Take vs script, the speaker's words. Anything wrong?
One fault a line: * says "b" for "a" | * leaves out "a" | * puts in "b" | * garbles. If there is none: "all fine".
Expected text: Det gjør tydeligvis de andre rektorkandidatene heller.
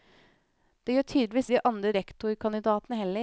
all fine